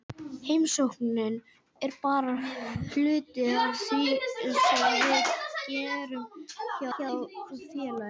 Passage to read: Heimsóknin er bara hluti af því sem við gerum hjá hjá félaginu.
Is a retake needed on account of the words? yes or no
no